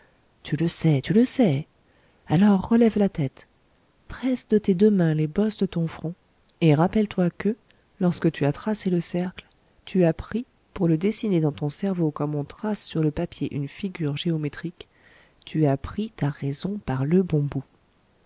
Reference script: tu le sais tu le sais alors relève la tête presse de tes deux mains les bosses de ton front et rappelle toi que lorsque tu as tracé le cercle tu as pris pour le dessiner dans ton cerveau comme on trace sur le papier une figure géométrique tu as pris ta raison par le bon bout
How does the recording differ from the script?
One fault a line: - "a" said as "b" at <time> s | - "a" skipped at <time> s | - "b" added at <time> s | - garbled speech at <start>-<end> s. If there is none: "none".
none